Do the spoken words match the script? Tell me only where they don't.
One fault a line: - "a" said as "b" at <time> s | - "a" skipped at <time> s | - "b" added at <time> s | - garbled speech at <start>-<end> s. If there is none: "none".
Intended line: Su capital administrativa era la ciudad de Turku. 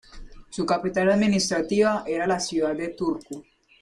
none